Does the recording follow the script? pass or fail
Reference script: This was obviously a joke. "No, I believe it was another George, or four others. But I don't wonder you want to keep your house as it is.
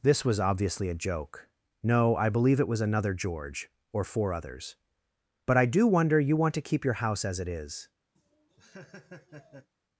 fail